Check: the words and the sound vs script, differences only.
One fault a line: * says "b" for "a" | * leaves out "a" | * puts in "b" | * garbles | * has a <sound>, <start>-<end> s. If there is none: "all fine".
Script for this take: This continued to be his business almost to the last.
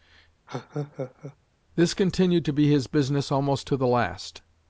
* has a laugh, 0.5-1.4 s